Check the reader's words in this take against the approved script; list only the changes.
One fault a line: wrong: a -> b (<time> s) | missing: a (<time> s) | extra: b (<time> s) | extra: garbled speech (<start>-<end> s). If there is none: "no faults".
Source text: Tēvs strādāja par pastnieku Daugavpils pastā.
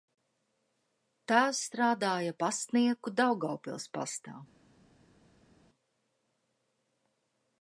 missing: par (2.3 s)